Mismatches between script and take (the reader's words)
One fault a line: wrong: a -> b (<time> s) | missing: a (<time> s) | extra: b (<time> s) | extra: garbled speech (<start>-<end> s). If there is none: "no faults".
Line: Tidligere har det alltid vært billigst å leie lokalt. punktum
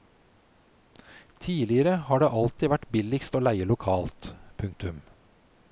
no faults